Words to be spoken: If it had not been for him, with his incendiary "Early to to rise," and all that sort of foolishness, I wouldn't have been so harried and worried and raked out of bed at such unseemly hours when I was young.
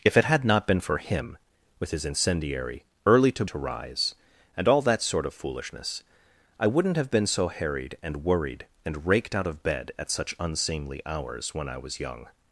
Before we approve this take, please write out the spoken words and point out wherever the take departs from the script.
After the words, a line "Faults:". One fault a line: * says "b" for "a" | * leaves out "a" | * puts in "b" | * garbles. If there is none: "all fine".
If it had not been for him, with his incendiary "Early to to rise," and all that sort of foolishness, I wouldn't have been so harried and worried and raked out of bed at such unseemly hours when I was young.
Faults:
all fine